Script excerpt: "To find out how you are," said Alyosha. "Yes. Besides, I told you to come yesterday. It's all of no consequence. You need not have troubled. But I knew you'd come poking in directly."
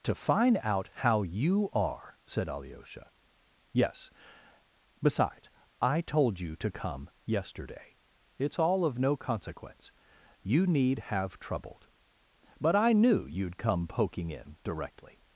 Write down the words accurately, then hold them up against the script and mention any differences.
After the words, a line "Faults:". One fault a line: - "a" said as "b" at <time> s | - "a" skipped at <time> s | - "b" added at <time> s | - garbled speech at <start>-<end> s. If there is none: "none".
"To find out how you are," said Alyosha. "Yes. Besides, I told you to come yesterday. It's all of no consequence. You need have troubled. But I knew you'd come poking in directly."
Faults:
- "not" skipped at 11.0 s